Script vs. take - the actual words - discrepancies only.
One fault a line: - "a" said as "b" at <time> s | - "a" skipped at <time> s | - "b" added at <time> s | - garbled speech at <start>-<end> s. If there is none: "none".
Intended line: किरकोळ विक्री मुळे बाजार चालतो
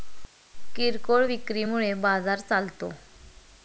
none